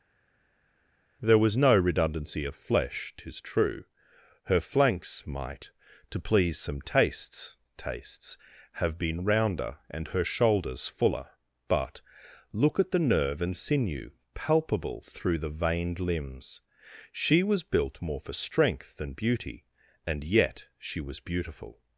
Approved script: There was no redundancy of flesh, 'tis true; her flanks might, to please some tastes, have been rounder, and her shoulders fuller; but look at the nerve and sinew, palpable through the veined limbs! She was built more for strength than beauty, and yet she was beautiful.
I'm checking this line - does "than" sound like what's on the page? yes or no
yes